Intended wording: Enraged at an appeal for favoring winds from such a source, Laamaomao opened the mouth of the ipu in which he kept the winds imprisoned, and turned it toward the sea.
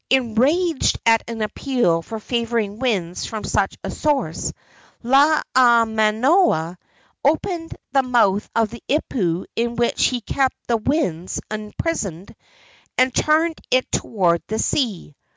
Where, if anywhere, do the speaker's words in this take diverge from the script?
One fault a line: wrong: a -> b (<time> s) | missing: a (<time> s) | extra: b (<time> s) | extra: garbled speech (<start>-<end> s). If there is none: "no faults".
no faults